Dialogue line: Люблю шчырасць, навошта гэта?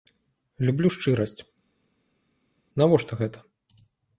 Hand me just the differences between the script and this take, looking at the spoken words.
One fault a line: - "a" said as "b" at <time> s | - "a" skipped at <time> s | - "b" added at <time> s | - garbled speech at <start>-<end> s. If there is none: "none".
none